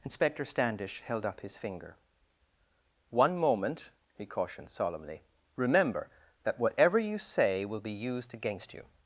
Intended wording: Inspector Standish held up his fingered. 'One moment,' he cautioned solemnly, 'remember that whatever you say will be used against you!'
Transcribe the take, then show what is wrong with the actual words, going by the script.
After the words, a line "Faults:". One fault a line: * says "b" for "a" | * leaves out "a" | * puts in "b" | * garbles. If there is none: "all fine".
Inspector Standish held up his finger. 'One moment,' he cautioned solemnly, 'remember that whatever you say will be used against you!'
Faults:
* says "finger" for "fingered"